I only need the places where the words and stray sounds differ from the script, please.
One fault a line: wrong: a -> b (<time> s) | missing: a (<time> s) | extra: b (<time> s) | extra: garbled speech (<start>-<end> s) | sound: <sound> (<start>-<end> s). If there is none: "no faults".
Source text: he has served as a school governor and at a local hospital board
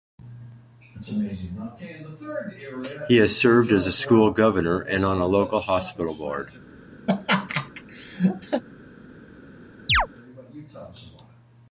wrong: at -> on (5.0 s)
sound: laugh (7.1-8.6 s)
sound: chirp (9.9-10.1 s)